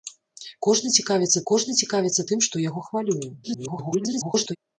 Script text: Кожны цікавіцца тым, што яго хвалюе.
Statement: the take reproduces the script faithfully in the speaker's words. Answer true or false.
false